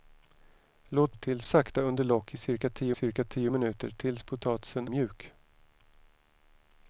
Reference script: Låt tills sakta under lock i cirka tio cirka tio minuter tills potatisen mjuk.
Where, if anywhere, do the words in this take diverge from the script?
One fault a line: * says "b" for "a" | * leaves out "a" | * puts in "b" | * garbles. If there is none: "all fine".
all fine